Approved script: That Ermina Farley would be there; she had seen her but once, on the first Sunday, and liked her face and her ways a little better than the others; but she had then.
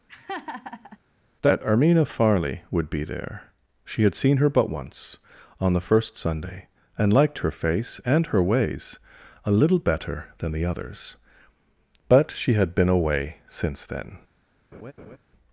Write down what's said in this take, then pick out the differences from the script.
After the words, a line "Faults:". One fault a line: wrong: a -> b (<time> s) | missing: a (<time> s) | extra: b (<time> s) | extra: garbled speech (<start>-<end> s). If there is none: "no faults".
That Ermina Farley would be there; she had seen her but once, on the first Sunday, and liked her face and her ways a little better than the others; but she had been away since then.
Faults:
extra: been away since (12.7 s)